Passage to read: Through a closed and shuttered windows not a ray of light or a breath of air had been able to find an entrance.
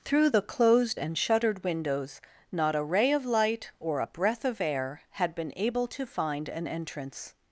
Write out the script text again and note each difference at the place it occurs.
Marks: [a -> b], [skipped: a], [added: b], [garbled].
Through [a -> the] closed and shuttered windows not a ray of light or a breath of air had been able to find an entrance.